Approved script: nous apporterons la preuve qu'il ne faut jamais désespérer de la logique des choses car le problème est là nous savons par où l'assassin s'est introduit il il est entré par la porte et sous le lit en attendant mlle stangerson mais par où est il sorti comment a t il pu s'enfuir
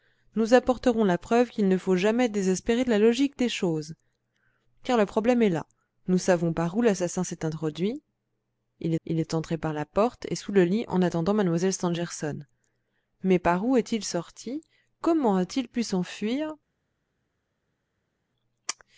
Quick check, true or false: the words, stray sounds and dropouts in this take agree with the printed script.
true